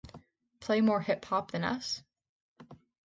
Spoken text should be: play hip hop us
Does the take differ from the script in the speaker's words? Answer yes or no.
yes